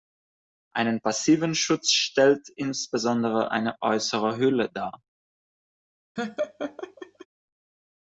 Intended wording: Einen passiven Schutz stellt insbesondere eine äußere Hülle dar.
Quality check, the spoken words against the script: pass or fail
pass